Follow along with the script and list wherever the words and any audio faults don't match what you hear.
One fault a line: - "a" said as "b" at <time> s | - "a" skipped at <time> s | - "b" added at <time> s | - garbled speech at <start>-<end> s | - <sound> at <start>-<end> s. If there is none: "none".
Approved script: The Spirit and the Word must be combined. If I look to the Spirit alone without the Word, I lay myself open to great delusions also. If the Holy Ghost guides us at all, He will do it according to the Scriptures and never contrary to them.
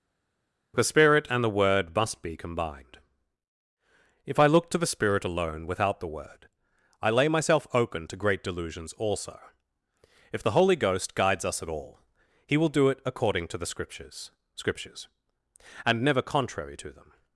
- "Scriptures" added at 14.6 s